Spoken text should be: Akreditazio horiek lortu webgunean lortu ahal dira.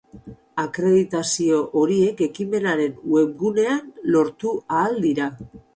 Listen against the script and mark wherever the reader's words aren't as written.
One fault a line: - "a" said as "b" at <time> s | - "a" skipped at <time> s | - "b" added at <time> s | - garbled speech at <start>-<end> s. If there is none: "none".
- "lortu" said as "ekimenaren" at 2.3 s